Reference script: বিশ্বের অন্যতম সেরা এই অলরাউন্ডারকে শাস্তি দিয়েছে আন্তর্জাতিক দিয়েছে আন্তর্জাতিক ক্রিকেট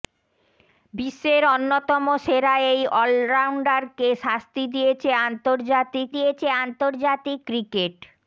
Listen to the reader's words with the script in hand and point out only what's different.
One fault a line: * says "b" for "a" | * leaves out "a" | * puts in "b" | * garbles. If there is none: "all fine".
all fine